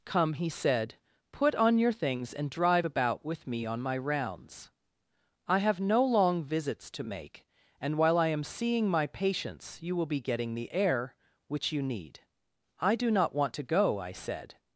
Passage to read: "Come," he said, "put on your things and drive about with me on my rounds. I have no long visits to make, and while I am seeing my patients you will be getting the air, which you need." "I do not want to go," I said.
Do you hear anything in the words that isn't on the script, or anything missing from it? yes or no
no